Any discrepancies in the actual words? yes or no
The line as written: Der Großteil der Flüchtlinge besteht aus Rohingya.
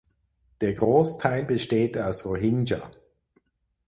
yes